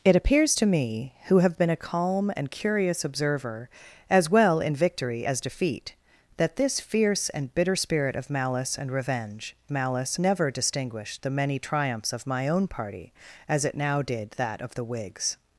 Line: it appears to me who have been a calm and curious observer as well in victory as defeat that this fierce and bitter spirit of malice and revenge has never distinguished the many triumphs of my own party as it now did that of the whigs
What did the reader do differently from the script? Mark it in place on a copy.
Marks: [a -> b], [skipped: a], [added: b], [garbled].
it appears to me who have been a calm and curious observer as well in victory as defeat that this fierce and bitter spirit of malice and revenge [has -> malice] never distinguished the many triumphs of my own party as it now did that of the whigs